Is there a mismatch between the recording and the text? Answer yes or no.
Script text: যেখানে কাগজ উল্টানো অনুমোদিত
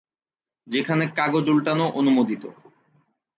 no